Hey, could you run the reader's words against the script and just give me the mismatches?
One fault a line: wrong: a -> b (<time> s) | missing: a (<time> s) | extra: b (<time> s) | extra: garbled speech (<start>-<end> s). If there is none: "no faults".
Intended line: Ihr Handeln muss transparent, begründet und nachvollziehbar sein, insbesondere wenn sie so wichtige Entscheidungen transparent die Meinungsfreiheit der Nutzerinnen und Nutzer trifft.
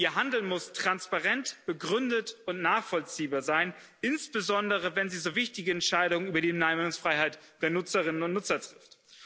wrong: transparent -> über (6.3 s)